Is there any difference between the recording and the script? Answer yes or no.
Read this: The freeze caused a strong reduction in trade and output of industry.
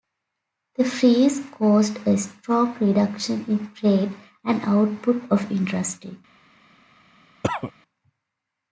no